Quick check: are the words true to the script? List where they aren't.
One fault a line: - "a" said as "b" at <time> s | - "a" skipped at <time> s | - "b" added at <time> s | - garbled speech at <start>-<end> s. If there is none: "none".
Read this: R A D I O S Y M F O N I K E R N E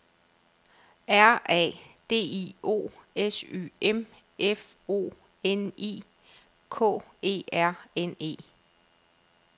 none